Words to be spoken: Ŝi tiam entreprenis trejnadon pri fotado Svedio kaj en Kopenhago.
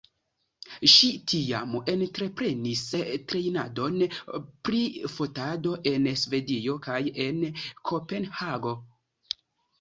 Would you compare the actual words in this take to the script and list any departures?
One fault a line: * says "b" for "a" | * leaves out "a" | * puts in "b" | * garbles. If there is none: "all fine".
* puts in "en"